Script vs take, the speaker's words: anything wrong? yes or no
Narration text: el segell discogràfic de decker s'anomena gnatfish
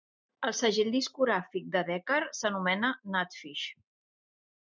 no